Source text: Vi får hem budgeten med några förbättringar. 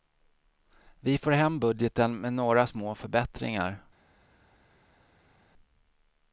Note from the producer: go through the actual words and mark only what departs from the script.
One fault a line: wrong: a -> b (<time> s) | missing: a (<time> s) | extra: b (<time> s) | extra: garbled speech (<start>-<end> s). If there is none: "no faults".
extra: små (2.6 s)